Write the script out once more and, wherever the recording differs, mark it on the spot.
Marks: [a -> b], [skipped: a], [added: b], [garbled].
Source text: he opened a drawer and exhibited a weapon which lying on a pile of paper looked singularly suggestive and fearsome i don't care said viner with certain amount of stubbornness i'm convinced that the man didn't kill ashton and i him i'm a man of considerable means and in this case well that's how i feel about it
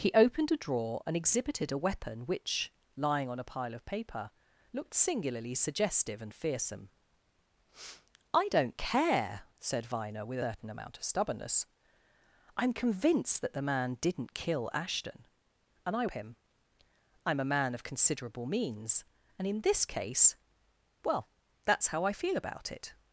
he opened a drawer and exhibited a weapon which lying on a pile of paper looked singularly suggestive and fearsome i don't care said viner with certain amount of stubbornness i'm convinced that the man didn't kill ashton and i him i'm a man of considerable means and in this case well that's how i feel about it